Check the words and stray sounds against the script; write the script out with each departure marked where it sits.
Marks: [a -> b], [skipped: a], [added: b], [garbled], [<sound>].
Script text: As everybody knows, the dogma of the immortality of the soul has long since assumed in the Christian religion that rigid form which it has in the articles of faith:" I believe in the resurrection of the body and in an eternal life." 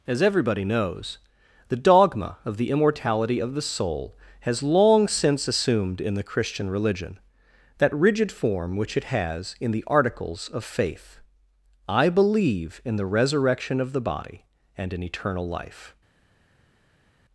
As everybody knows, the dogma of the immortality of the soul has long since assumed in the Christian religion that rigid form which it has in the articles of faith:" I believe in the resurrection of the body and in [skipped: an] eternal life."